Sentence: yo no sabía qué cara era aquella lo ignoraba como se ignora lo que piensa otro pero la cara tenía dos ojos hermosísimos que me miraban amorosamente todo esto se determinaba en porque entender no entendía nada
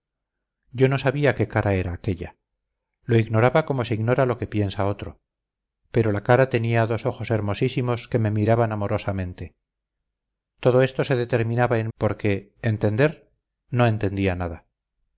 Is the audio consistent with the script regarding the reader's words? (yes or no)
yes